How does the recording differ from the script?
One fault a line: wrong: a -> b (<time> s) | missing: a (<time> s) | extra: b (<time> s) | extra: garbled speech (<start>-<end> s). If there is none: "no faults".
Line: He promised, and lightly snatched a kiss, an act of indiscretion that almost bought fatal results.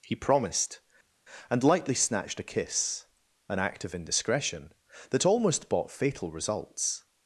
no faults